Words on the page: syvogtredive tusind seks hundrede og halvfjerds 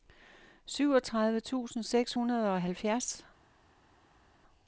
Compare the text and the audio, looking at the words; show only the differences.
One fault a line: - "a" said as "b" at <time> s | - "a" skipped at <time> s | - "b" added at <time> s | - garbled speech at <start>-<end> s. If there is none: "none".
none